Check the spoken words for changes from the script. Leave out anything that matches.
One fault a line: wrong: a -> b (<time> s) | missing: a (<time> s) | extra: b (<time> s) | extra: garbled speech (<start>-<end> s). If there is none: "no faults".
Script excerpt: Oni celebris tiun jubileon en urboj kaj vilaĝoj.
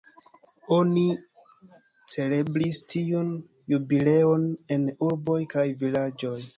no faults